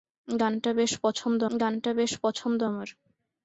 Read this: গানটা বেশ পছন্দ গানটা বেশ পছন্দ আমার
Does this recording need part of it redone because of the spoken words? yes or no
no